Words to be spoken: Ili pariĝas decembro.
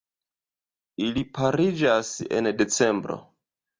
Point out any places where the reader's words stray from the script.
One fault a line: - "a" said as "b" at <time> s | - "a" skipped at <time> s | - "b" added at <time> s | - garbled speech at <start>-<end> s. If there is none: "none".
- "en" added at 2.4 s